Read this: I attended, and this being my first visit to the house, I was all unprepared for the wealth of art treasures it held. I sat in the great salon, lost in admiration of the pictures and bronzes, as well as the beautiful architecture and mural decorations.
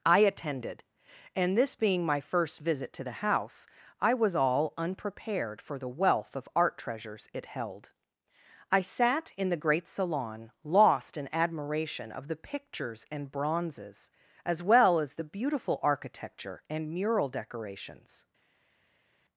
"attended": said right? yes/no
yes